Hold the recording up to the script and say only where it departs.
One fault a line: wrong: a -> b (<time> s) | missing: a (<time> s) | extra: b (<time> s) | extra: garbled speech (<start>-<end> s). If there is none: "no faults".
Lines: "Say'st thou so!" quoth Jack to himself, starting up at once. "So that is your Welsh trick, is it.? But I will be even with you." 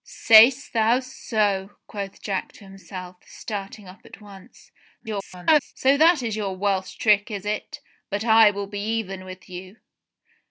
extra: garbled speech (5.0-5.7 s)